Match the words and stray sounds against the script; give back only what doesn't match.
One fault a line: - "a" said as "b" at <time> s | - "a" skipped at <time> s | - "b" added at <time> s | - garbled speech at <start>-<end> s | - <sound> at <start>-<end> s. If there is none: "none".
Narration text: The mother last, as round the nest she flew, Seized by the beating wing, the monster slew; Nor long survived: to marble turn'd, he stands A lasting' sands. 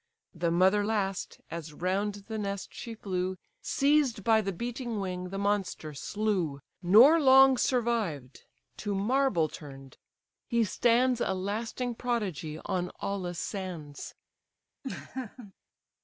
- "prodigy on Aulis" added at 11.9 s
- laugh at 14.8-15.5 s